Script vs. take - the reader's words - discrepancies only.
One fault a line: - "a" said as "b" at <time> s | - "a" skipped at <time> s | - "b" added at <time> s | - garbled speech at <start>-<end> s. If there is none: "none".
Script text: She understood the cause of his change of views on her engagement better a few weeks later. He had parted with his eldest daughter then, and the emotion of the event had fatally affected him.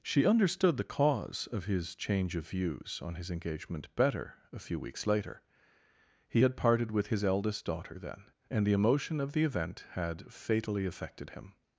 - "her" said as "his" at 3.1 s